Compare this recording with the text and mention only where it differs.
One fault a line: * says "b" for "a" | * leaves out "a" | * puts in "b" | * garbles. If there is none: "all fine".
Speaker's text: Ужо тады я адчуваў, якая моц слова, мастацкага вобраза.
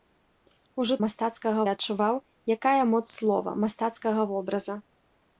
* says "мастацкага" for "тады"